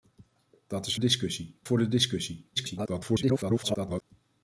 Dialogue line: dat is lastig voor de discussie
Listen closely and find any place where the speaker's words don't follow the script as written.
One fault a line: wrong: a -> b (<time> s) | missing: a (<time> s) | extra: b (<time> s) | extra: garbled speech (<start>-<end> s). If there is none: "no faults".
wrong: lastig -> discussie (1.0 s)
extra: garbled speech (2.6-4.0 s)